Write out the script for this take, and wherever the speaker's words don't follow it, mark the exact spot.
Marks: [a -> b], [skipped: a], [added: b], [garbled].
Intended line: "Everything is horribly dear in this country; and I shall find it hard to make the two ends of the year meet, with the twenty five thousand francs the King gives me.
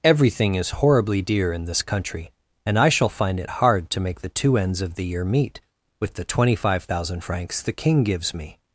"Everything is horribly dear in this country; and I shall find it hard to make the two ends of the year meet, with the twenty five thousand francs the King gives me.